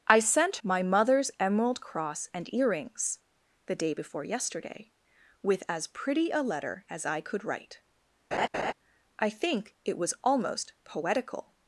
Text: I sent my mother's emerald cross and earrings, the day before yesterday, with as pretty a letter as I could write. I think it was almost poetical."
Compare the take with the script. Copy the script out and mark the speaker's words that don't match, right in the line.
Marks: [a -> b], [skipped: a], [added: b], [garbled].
I sent my mother's emerald cross and earrings, the day before yesterday, with as pretty a letter as I could write. I think it was almost poetical."